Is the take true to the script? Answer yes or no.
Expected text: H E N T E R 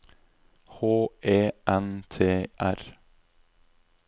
no